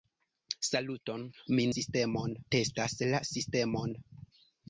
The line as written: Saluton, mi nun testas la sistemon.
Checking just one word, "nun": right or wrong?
wrong